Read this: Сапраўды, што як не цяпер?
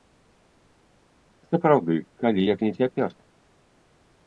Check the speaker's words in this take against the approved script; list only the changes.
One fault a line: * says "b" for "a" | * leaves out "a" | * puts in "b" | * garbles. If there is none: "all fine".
* says "калі" for "што"